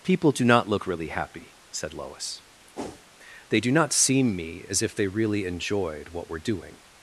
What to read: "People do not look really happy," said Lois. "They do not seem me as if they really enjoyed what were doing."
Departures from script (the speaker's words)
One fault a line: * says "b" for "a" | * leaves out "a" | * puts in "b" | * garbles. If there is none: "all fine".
all fine